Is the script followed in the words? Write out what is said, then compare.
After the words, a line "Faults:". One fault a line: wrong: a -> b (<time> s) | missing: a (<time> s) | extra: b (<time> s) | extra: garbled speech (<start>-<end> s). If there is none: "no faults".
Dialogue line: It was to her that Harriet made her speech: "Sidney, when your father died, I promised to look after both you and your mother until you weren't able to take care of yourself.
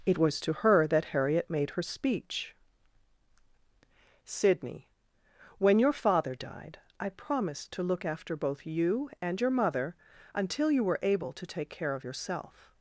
It was to her that Harriet made her speech: "Sidney, when your father died, I promised to look after both you and your mother until you were able to take care of yourself.
Faults:
wrong: weren't -> were (10.9 s)